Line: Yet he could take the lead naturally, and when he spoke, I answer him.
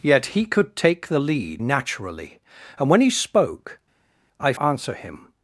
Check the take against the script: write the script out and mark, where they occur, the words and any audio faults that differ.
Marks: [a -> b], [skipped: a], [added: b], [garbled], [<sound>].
Yet he could take the lead naturally, and when he spoke, I answer him.